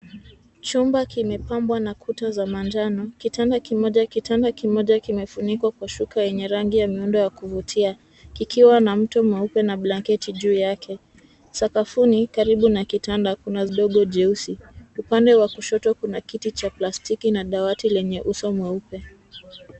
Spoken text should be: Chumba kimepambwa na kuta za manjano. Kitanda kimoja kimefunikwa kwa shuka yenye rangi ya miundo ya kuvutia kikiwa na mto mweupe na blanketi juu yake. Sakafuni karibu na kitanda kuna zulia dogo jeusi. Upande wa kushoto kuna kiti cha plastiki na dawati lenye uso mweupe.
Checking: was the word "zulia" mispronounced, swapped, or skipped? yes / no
yes